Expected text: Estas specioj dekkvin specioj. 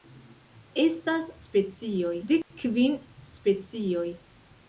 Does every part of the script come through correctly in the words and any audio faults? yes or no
no